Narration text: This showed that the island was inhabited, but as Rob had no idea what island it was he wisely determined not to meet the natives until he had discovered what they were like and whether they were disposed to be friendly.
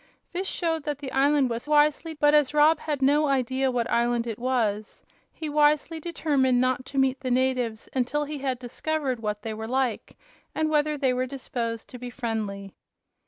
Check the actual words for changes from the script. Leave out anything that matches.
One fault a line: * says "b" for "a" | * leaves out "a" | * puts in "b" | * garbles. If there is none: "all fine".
* says "wisely" for "inhabited"